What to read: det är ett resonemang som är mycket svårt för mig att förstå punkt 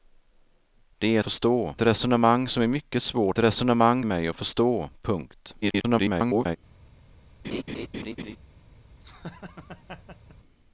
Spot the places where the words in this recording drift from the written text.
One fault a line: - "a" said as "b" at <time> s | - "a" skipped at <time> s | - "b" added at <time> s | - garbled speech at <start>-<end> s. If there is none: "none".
- "ett" said as "förstå" at 1.2 s
- "för" said as "resonemang" at 3.4 s
- garbled speech at 5.6-6.6 s